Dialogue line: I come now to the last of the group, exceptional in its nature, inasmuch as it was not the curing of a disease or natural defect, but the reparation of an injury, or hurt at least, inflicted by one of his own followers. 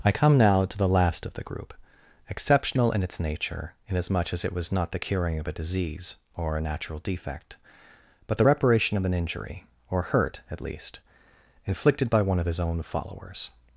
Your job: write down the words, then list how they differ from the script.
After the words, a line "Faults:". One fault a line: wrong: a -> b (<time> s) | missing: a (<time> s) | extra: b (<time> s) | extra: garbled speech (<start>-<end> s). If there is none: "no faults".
I come now to the last of the group, exceptional in its nature, inasmuch as it was not the curing of a disease or a natural defect, but the reparation of an injury, or hurt at least, inflicted by one of his own followers.
Faults:
extra: a (6.6 s)